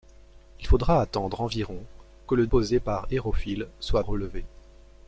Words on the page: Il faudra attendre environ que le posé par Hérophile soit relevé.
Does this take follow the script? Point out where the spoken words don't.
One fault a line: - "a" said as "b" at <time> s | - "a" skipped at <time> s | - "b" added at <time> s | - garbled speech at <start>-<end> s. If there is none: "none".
none